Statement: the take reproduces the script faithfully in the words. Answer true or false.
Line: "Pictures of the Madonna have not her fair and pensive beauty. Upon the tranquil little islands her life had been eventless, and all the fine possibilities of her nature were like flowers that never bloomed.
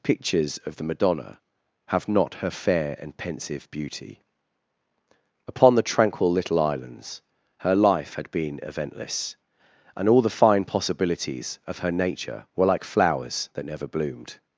true